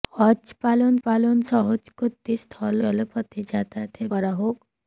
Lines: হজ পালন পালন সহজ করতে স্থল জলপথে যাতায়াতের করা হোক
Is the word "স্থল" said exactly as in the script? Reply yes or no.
yes